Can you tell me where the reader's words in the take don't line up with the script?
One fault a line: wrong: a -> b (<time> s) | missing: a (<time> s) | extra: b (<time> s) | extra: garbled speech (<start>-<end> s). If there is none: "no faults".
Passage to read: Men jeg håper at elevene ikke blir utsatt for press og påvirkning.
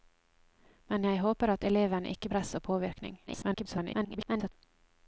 missing: blir utsatt for (2.3 s)
extra: garbled speech (3.3-4.5 s)